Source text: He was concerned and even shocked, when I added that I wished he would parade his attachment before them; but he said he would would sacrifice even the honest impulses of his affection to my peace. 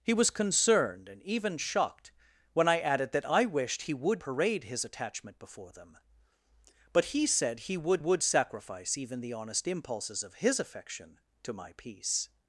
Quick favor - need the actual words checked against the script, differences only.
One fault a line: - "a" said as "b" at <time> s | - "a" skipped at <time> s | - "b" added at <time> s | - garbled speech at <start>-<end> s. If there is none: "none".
none